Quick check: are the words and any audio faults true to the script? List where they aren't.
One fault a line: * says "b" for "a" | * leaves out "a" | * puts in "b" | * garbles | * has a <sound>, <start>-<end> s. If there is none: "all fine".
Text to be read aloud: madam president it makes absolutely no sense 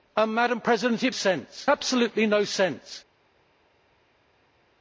* says "sense" for "makes"